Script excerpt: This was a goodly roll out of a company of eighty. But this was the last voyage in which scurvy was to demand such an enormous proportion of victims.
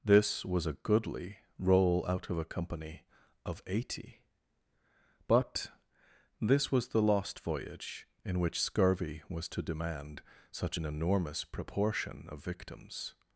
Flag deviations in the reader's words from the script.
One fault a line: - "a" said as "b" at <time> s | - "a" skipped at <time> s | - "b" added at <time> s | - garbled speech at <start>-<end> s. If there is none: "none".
- "last" said as "lost" at 7.0 s